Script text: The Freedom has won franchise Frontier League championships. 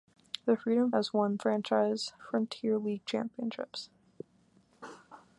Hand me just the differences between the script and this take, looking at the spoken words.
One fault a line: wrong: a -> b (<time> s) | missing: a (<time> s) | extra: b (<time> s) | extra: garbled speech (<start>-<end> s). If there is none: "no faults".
no faults